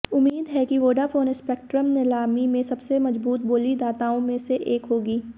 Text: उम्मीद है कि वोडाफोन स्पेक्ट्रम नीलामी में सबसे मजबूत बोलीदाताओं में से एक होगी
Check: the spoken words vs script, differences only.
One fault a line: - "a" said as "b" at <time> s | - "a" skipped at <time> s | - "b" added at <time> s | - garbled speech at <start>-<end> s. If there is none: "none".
none